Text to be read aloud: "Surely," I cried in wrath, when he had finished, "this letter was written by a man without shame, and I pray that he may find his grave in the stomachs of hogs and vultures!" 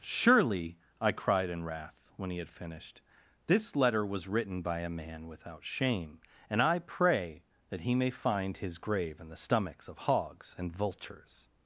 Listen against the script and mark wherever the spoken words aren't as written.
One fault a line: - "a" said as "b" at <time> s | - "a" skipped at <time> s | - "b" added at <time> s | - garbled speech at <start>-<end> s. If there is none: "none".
none